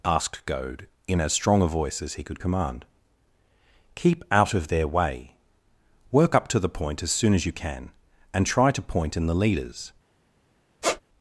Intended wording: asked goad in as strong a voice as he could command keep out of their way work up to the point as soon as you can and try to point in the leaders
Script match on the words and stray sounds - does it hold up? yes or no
no